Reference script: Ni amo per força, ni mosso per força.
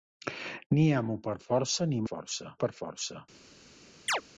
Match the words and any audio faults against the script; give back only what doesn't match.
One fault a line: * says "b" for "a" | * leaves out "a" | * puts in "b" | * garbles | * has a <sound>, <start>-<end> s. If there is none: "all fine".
* says "força" for "mosso"
* has a chirp, 4.1-4.2 s